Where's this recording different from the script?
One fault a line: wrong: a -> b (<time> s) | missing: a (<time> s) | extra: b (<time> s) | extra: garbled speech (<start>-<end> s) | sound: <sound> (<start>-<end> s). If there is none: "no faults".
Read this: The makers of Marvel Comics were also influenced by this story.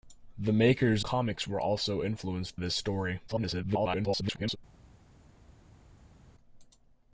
missing: of Marvel (1.1 s)
missing: by (2.6 s)
extra: garbled speech (3.3-4.6 s)